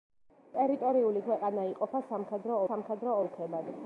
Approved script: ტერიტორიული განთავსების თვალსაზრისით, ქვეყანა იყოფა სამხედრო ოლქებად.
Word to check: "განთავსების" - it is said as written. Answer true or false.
false